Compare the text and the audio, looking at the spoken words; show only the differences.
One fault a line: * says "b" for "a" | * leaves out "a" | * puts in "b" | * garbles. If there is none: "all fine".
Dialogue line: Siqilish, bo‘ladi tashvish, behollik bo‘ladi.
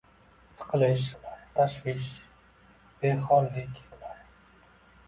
all fine